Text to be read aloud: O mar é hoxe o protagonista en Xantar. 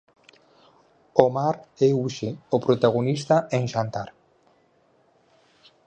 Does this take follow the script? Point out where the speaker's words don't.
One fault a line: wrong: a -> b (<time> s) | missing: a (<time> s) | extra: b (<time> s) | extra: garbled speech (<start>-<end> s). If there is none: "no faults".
no faults